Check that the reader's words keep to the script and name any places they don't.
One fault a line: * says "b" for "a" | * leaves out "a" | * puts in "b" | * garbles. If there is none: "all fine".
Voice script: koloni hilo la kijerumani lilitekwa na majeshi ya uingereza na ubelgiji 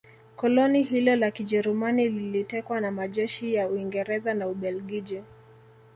all fine